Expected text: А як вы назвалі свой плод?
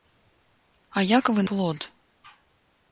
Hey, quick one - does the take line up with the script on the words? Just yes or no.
no